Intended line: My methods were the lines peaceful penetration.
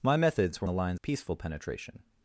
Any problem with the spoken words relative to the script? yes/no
no